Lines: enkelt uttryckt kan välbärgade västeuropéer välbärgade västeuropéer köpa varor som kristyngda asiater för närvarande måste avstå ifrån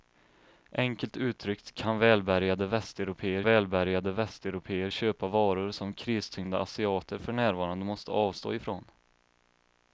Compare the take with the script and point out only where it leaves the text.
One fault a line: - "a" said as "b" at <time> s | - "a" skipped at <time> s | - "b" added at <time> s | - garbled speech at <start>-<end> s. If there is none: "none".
none